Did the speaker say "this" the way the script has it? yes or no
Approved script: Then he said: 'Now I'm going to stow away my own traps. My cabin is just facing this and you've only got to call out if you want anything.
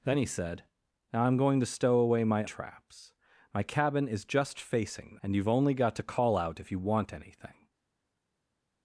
no